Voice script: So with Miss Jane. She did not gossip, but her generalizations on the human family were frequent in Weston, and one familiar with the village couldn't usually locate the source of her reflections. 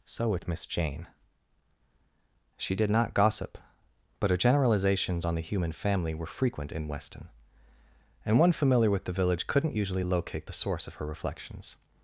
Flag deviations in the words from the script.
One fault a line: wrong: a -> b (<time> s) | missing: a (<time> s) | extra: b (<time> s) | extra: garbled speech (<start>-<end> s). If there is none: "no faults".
no faults